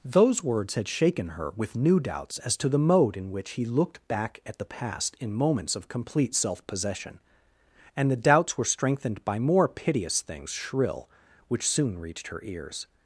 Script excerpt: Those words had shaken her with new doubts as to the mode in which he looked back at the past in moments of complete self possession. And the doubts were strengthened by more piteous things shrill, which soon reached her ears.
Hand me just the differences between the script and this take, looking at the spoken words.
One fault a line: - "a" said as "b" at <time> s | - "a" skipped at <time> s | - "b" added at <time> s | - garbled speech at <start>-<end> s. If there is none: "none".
none